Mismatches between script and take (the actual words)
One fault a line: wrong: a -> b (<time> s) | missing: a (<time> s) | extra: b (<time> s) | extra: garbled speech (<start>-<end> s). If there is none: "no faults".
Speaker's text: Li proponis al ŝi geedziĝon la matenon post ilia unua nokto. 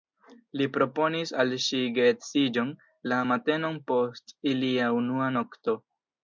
no faults